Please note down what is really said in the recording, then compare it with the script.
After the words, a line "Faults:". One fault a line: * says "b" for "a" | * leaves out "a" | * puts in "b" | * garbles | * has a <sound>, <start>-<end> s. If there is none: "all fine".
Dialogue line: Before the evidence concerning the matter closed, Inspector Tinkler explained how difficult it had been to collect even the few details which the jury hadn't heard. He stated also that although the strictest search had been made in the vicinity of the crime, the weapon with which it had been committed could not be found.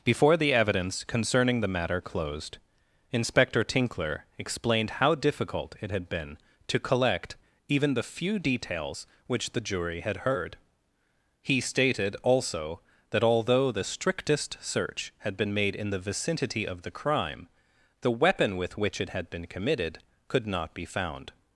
Before the evidence concerning the matter closed, Inspector Tinkler explained how difficult it had been to collect even the few details which the jury had heard. He stated also that although the strictest search had been made in the vicinity of the crime, the weapon with which it had been committed could not be found.
Faults:
* says "had" for "hadn't"